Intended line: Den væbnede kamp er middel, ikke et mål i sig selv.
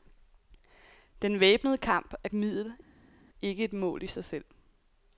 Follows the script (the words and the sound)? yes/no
yes